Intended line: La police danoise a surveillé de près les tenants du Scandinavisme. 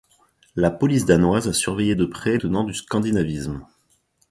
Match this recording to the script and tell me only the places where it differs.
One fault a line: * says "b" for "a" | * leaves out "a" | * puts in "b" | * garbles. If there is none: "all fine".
* leaves out "les"